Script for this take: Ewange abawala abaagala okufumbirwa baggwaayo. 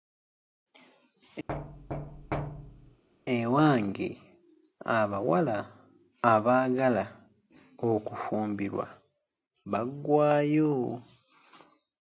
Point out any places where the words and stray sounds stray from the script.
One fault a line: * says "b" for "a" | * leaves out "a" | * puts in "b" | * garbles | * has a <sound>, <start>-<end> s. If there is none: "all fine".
* has a thud, 1.5-3.0 s